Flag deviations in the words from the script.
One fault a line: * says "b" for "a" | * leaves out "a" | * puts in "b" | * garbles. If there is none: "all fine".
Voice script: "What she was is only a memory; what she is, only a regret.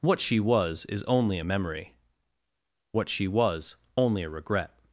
* says "was" for "is"